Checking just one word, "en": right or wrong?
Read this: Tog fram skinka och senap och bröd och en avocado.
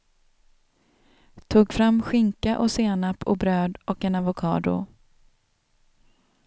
right